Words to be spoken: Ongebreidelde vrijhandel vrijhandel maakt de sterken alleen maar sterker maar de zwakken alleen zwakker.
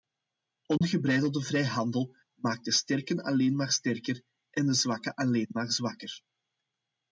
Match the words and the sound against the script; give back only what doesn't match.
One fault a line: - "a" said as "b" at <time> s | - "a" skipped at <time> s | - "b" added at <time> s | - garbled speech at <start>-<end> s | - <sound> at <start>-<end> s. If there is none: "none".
- dropout at 0.8-0.8 s
- "vrijhandel" skipped at 2.1 s
- "maar" said as "en" at 4.5 s
- "maar" added at 5.5 s